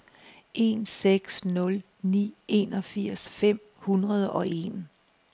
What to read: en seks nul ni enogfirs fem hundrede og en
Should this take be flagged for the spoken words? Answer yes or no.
no